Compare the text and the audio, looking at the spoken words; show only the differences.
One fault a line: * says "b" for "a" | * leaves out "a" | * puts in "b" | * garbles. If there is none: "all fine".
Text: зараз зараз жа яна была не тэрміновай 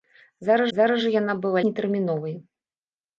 all fine